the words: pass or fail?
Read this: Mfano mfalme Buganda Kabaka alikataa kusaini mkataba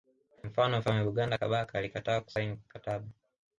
pass